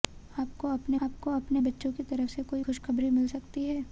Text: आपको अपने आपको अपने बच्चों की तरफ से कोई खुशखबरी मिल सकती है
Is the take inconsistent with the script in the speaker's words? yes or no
no